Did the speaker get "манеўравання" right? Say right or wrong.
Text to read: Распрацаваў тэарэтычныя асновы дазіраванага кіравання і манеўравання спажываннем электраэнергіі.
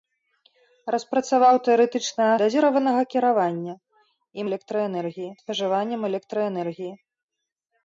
wrong